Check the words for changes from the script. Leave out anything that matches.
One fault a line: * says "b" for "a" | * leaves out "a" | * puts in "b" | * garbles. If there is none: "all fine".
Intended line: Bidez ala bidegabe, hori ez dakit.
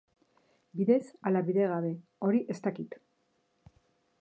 all fine